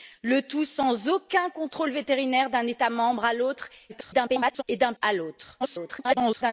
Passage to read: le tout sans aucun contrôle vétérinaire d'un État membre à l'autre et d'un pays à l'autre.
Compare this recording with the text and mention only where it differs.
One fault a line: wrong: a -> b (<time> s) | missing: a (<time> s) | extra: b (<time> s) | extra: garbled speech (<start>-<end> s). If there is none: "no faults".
extra: garbled speech (3.9-4.6 s)
missing: pays (4.9 s)
extra: garbled speech (5.6-6.5 s)